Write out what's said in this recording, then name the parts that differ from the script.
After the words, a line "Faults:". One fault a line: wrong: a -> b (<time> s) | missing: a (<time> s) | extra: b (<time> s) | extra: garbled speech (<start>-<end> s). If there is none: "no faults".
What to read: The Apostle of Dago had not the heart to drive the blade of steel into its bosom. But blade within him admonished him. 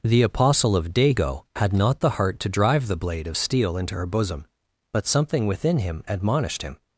The Apostle of Dago had not the heart to drive the blade of steel into her bosom. But something within him admonished him.
Faults:
wrong: its -> her (3.9 s)
wrong: blade -> something (5.1 s)